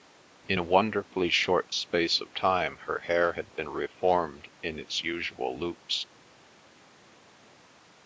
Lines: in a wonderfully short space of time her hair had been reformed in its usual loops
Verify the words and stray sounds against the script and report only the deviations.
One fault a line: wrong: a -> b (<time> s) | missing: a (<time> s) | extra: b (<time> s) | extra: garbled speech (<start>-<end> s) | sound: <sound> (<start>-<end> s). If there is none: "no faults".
no faults